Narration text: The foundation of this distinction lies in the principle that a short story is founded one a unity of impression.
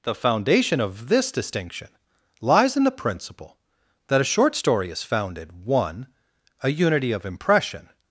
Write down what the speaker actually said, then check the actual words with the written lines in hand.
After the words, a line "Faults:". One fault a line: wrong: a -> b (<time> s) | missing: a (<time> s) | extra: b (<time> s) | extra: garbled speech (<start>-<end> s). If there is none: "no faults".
The foundation of this distinction lies in the principle that a short story is founded one a unity of impression.
Faults:
no faults